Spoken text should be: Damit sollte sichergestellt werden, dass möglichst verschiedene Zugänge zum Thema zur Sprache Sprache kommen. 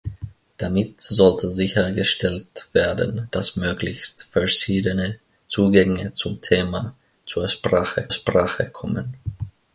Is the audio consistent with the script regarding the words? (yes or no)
yes